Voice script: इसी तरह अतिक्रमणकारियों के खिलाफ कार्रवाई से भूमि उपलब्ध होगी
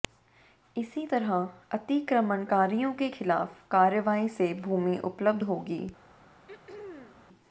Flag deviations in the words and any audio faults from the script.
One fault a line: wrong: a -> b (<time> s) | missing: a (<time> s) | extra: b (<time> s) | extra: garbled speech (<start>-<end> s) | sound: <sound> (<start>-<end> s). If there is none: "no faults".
sound: throat clearing (6.5-7.3 s)